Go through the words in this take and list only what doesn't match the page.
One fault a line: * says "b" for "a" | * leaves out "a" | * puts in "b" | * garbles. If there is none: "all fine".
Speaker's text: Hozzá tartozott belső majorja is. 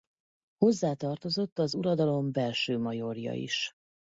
* puts in "az uradalom"